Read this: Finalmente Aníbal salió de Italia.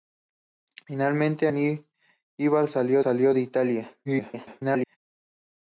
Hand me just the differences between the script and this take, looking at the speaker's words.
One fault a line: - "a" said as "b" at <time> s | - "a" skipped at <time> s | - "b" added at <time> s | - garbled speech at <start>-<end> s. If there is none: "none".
- "salió" added at 3.0 s
- garbled speech at 4.0-5.0 s